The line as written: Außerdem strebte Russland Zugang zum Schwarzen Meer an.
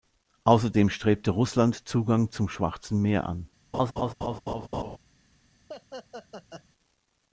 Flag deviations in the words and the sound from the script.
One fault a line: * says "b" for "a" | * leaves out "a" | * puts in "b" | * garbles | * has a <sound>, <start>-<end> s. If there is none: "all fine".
* has a laugh, 3.7-5.0 s
* has a laugh, 5.7-6.6 s